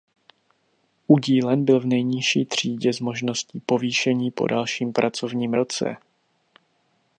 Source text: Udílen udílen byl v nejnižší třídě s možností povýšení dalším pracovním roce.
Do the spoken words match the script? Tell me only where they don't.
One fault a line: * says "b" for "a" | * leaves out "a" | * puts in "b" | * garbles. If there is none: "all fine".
* leaves out "udílen"
* puts in "po"